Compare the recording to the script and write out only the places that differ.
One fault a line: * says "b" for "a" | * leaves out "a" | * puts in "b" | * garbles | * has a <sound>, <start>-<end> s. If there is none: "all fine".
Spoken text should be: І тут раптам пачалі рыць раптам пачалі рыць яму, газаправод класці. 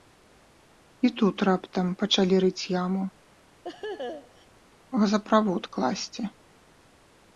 * leaves out "раптам пачалі рыць"
* has a laugh, 3.6-4.5 s